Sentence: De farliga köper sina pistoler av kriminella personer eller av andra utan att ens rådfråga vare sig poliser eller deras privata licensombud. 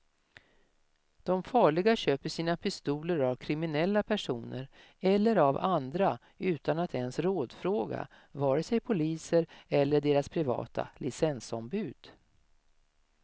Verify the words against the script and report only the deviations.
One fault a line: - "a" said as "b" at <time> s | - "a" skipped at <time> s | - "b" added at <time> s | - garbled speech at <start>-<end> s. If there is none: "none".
none